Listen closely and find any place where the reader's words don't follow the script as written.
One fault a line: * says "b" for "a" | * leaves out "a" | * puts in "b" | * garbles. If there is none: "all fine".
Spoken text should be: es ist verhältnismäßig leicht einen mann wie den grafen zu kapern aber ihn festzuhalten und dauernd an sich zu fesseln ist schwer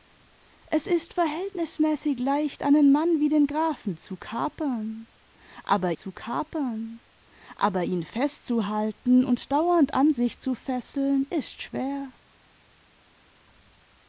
* puts in "zu kapern aber"